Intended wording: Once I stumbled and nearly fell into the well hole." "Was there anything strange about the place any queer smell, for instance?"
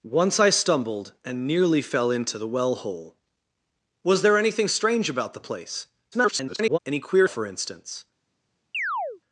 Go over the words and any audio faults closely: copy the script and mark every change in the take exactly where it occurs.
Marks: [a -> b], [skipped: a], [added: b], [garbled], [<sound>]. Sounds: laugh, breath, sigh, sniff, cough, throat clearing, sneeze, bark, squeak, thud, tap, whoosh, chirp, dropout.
Once I stumbled and nearly fell into the well hole." "Was there anything strange about the place [garbled] any queer [skipped: smell,] for instance?" [chirp]